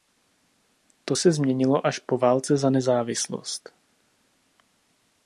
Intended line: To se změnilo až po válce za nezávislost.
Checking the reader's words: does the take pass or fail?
pass